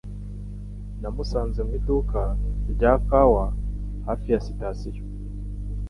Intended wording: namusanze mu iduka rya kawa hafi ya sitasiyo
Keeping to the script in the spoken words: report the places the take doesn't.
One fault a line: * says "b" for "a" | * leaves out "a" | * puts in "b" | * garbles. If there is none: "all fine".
all fine